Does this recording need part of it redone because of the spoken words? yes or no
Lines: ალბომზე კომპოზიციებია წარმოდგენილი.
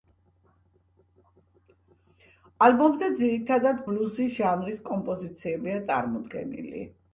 yes